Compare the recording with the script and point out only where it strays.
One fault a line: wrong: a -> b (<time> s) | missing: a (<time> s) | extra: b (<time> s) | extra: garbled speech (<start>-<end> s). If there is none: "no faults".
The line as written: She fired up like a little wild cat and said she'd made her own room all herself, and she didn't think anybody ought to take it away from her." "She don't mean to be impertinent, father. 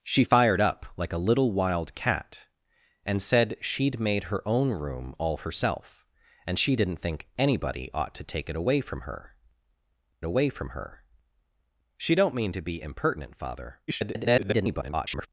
extra: away from her (10.2 s)
extra: garbled speech (13.9-15.3 s)